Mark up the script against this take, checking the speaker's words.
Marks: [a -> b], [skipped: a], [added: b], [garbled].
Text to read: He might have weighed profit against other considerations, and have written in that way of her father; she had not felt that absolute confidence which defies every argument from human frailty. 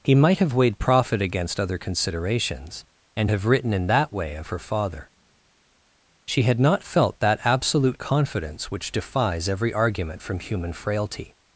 He might have weighed profit against other considerations, and have written in that way of her father; she had not felt that absolute confidence which defies every argument from human frailty.